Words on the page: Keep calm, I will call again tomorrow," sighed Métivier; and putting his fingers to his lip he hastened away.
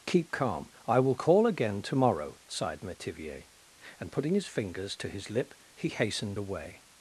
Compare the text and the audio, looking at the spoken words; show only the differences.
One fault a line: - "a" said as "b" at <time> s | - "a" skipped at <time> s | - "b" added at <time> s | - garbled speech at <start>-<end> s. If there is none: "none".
none